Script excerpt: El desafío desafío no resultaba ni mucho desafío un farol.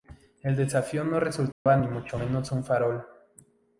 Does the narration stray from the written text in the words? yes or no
yes